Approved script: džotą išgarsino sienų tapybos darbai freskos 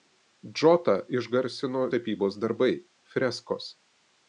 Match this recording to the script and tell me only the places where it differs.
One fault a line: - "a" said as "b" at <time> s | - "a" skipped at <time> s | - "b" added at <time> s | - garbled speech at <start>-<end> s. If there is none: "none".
- "sienų" skipped at 1.8 s